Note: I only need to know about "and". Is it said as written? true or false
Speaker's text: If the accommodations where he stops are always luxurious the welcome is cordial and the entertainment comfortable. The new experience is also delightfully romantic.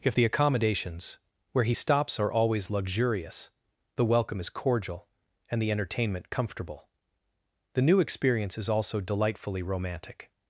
true